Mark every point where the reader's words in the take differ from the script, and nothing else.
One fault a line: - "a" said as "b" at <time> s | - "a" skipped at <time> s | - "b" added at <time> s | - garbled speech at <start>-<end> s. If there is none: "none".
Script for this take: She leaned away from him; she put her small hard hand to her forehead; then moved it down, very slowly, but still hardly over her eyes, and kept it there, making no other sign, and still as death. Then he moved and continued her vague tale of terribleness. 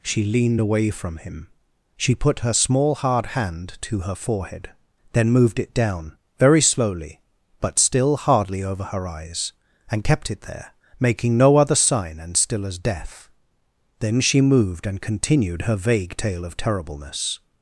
- "he" said as "she" at 14.2 s